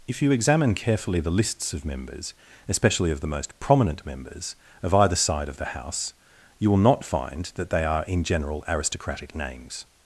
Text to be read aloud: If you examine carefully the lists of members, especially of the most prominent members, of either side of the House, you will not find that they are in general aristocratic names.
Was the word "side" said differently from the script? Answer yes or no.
no